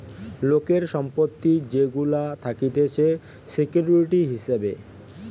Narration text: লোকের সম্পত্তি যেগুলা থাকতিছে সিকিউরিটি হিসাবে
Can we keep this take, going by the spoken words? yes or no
yes